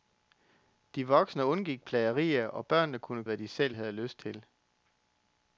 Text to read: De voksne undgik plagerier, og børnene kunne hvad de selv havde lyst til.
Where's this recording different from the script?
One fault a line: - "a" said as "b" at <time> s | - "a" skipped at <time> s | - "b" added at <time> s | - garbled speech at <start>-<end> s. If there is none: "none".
none